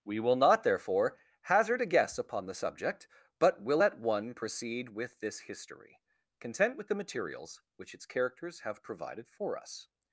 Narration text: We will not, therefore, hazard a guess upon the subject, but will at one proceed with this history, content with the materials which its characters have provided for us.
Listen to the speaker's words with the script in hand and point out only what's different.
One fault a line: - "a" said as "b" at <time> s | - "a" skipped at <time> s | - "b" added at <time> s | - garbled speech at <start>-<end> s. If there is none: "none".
none